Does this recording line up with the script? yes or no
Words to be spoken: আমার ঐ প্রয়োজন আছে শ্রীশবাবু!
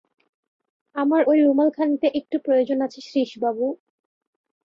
no